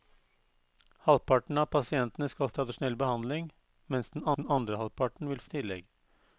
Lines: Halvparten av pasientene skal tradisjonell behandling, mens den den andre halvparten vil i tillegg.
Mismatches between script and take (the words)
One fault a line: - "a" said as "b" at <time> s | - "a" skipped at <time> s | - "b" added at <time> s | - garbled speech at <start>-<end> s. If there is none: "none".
none